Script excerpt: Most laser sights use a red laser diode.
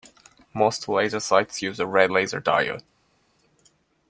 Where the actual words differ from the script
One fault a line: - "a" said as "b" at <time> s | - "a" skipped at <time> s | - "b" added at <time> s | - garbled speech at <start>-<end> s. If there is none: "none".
none